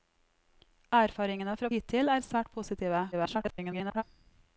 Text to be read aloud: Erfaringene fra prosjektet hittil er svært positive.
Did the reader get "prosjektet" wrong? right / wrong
wrong